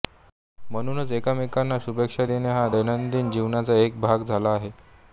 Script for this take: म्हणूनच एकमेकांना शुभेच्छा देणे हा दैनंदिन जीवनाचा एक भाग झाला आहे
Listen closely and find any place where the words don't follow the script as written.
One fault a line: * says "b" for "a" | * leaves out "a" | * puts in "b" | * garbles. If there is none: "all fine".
all fine